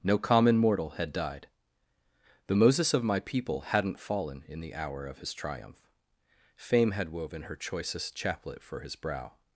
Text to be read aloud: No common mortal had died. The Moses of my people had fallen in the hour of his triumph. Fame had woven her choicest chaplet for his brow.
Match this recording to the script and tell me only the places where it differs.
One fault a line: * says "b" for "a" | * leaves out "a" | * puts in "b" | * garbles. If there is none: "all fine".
* says "hadn't" for "had"